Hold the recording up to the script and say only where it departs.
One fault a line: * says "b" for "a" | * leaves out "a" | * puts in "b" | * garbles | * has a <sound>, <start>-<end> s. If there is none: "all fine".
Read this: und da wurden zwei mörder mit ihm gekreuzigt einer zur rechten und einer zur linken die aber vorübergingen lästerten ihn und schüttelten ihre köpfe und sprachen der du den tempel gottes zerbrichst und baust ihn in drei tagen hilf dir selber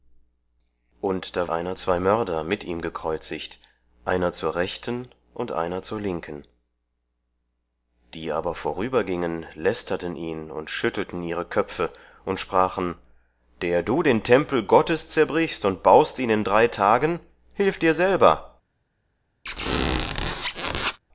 * says "einer" for "wurden"
* has a squeak, 19.5-21.0 s